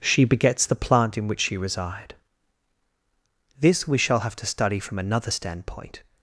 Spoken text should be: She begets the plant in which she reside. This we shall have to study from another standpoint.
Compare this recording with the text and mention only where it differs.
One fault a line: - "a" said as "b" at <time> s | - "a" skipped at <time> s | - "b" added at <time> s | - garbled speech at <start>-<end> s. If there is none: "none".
none